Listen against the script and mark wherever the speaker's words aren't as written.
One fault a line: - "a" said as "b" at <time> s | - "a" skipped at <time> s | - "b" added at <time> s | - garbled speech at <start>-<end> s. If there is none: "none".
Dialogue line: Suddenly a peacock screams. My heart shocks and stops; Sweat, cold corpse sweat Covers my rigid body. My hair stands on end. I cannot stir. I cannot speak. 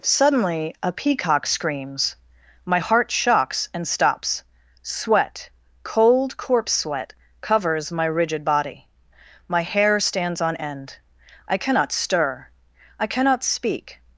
none